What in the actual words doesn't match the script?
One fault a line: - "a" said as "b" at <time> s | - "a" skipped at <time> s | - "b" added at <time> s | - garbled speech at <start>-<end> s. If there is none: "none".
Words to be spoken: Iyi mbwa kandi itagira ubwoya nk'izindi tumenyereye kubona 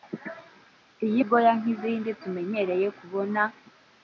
- "mbwa kandi itagira" skipped at 1.2 s